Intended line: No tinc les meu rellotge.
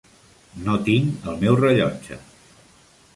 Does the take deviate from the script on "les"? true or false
true